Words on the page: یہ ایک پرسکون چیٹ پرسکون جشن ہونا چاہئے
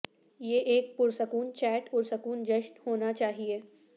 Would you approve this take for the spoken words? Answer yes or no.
yes